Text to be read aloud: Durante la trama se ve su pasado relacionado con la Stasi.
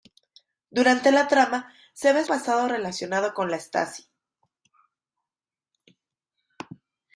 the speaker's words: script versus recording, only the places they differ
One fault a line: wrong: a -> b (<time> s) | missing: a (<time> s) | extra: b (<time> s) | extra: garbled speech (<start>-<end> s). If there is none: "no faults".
missing: su (2.2 s)